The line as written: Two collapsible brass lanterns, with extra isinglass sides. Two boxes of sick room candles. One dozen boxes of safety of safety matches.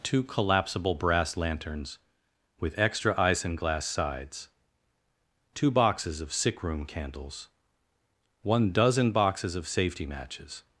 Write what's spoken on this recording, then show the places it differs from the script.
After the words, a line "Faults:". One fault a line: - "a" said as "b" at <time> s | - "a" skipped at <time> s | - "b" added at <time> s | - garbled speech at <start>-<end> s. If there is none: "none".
Two collapsible brass lanterns, with extra isinglass sides. Two boxes of sick room candles. One dozen boxes of safety matches.
Faults:
- "of safety" skipped at 10.1 s